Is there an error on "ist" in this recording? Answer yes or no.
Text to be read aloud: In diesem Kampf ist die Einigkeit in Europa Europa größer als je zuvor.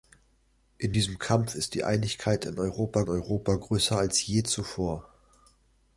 no